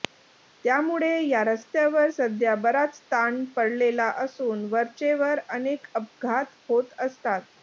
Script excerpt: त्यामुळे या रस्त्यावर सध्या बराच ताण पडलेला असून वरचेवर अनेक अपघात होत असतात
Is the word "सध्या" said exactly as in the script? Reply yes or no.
yes